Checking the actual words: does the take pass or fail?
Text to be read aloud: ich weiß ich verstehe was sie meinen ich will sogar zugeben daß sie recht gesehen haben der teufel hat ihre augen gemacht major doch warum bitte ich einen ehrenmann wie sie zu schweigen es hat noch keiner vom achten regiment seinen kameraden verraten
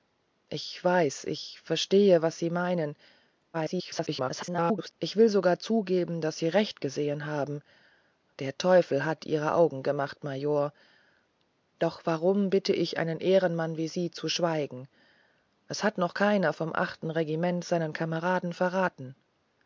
fail